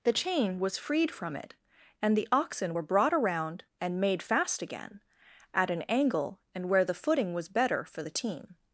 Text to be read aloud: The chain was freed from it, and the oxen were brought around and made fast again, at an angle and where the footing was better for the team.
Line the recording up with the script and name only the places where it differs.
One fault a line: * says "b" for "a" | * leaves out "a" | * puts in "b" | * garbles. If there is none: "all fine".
all fine